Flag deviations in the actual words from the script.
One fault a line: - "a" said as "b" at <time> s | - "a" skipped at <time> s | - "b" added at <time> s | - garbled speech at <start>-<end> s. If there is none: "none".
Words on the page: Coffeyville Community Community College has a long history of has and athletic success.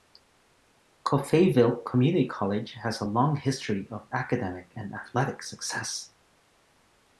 - "Community" skipped at 2.3 s
- "has" said as "academic" at 4.1 s